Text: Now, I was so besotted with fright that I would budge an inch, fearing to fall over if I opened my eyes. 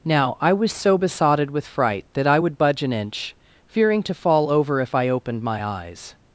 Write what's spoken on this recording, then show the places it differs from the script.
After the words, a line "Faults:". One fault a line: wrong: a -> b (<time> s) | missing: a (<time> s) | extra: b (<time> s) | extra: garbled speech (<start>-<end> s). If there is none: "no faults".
Now, I was so besotted with fright that I would budge an inch, fearing to fall over if I opened my eyes.
Faults:
no faults